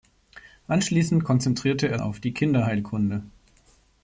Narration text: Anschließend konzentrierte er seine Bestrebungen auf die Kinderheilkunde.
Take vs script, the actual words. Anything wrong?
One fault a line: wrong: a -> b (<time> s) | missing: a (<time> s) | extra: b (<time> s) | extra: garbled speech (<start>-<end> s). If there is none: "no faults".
missing: seine Bestrebungen (2.0 s)